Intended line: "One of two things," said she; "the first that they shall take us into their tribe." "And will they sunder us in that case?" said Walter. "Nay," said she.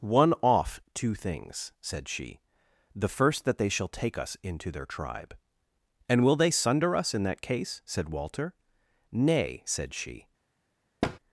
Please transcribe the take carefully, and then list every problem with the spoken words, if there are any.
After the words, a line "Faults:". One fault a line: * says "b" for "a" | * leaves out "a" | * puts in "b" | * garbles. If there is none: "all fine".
"One off two things," said she; "the first that they shall take us into their tribe." "And will they sunder us in that case?" said Walter. "Nay," said she.
Faults:
* says "off" for "of"